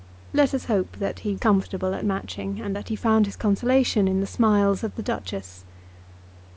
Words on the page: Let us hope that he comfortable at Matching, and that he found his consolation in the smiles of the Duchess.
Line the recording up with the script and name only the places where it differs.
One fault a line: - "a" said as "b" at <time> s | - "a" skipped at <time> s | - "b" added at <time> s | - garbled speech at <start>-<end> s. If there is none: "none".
none